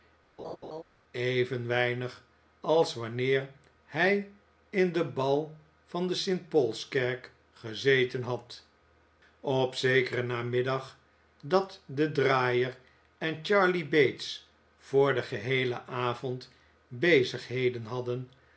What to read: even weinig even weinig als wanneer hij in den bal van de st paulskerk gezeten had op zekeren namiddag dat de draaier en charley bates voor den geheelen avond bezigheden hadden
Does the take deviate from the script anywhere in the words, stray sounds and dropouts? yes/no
yes